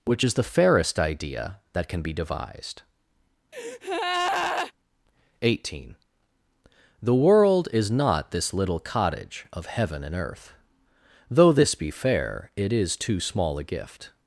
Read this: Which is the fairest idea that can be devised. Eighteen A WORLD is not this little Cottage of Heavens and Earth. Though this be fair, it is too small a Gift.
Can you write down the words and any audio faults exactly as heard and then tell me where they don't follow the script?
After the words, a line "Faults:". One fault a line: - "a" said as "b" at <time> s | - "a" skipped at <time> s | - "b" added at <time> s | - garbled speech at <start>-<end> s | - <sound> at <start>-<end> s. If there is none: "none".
Which is the fairest idea that can be devised. Eighteen The WORLD is not this little Cottage of Heaven and Earth. Though this be fair, it is too small a Gift.
Faults:
- breath at 3.5-4.7 s
- "A" said as "The" at 7.0 s
- "Heavens" said as "Heaven" at 9.7 s